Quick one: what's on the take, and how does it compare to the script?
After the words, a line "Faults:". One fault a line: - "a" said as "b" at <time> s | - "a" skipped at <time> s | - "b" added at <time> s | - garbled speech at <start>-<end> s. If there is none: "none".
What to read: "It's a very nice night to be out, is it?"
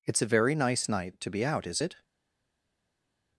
"It's a very nice night to be out, is it?"
Faults:
none